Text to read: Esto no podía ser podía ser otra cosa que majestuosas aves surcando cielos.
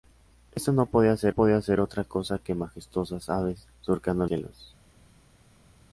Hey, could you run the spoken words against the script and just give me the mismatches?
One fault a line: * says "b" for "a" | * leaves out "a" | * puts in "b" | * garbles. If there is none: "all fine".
all fine